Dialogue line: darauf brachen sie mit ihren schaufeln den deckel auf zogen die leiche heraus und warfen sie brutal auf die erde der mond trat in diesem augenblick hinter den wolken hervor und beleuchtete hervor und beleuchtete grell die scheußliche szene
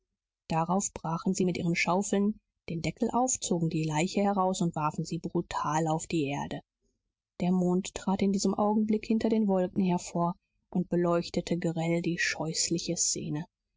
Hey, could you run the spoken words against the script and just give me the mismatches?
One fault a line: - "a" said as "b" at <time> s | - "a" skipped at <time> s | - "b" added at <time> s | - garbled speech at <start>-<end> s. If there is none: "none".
- "hervor und beleuchtete" skipped at 11.6 s